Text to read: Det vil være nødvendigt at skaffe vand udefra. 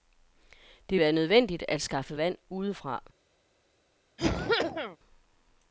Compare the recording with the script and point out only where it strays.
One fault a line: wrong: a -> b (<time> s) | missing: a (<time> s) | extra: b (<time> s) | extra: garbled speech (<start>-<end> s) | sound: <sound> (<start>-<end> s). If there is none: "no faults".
missing: vil (1.0 s)
sound: cough (4.2-5.0 s)